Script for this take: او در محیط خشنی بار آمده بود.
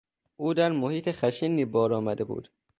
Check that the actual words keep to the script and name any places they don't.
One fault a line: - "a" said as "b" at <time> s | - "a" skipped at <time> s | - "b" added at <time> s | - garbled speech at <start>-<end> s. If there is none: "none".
none